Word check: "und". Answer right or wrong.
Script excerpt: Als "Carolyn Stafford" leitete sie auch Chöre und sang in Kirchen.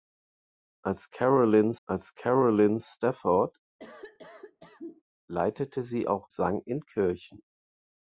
wrong